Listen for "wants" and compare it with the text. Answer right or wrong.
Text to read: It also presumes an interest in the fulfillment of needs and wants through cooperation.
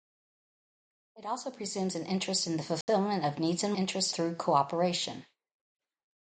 wrong